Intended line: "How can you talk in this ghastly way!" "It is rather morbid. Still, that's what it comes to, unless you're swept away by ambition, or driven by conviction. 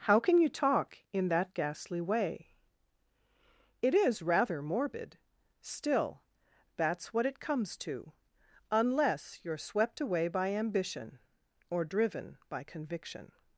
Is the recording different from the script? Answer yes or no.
yes